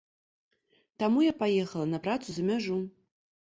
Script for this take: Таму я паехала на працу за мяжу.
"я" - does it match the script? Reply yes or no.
yes